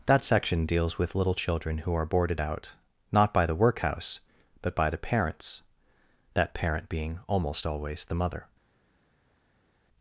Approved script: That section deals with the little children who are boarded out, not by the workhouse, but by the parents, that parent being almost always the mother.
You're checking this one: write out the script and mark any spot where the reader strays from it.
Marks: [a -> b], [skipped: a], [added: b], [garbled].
That section deals with [skipped: the] little children who are boarded out, not by the workhouse, but by the parents, that parent being almost always the mother.